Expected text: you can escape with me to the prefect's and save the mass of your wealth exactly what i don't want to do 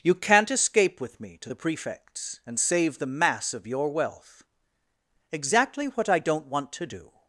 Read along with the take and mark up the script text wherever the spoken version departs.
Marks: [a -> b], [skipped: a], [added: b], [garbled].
you [can -> can't] escape with me to the prefect's and save the mass of your wealth exactly what i don't want to do